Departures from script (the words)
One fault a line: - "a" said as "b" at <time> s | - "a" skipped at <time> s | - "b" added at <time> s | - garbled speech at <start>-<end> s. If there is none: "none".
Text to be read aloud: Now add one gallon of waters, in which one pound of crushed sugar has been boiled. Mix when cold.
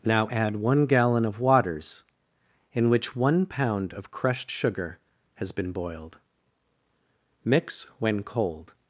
none